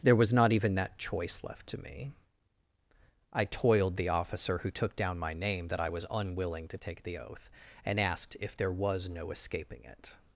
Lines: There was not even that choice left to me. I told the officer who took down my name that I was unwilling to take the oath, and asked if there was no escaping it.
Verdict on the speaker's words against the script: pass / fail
fail